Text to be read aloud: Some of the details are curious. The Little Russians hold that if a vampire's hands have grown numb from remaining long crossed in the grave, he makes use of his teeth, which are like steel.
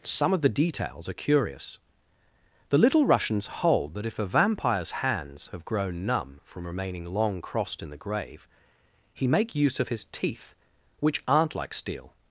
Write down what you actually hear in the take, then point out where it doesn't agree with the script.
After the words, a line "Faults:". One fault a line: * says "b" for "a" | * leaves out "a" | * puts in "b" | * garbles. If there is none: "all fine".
Some of the details are curious. The Little Russians hold that if a vampire's hands have grown numb from remaining long crossed in the grave, he make use of his teeth, which aren't like steel.
Faults:
* says "make" for "makes"
* says "aren't" for "are"